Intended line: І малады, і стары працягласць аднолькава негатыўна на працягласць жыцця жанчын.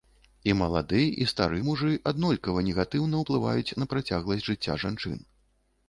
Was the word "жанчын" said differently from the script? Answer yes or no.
no